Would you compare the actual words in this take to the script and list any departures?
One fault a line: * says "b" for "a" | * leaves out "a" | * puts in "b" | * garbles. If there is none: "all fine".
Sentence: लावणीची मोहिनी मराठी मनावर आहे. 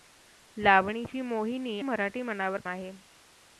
all fine